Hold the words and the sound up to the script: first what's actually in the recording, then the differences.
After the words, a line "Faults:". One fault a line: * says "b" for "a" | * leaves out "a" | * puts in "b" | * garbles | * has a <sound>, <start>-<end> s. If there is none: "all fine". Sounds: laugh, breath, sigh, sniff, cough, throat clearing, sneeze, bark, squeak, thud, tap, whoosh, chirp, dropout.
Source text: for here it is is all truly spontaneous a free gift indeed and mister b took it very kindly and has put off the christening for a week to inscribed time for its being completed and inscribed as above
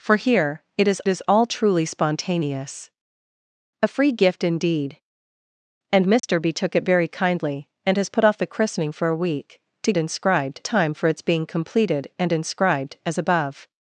for here it is is all truly spontaneous a free gift indeed and mister b took it very kindly and has put off the christening for a week to inscribed time for its being completed and inscribed as above
Faults:
* has a dropout, 6.2-6.2 s